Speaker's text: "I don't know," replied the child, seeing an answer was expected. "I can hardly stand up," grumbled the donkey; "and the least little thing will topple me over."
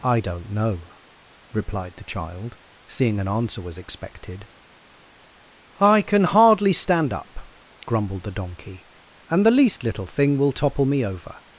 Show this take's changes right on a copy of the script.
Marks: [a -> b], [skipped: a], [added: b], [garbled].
"I don't know," replied the child, seeing an answer was expected. "I can hardly stand up," grumbled the donkey; "and the least little thing will topple me over."